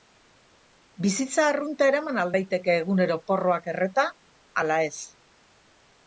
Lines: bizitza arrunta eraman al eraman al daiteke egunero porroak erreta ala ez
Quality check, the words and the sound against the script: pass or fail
fail